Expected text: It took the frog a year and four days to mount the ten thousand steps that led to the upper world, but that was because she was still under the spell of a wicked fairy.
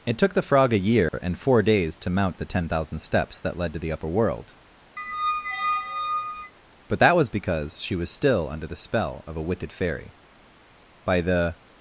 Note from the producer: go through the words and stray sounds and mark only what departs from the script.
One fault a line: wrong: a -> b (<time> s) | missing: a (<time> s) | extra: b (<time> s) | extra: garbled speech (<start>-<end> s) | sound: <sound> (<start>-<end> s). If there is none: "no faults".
sound: dropout (1.1-1.1 s)
sound: squeak (5.0-6.5 s)
extra: By the (11.1 s)